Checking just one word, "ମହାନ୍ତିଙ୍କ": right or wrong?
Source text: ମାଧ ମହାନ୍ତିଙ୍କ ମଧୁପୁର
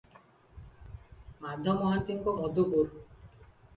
right